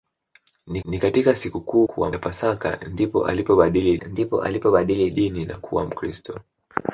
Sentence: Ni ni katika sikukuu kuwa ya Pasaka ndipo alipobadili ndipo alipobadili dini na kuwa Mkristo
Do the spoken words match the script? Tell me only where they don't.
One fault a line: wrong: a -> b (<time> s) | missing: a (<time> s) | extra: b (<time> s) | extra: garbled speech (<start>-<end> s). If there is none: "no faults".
no faults